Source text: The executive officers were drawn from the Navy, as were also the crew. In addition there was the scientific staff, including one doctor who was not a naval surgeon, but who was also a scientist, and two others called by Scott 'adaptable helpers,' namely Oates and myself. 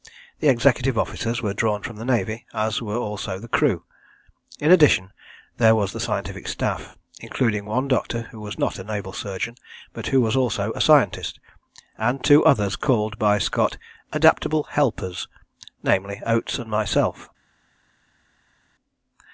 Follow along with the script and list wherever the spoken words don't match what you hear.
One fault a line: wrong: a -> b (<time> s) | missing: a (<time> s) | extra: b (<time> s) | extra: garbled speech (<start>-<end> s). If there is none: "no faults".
no faults